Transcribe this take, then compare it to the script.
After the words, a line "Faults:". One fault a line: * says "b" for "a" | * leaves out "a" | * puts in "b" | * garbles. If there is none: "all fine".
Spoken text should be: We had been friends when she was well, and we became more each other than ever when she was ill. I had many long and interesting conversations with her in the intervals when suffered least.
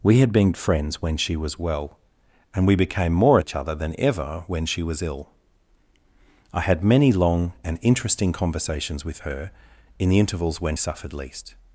We had been friends when she was well, and we became more each other than ever when she was ill. I had many long and interesting conversations with her in the intervals when suffered least.
Faults:
all fine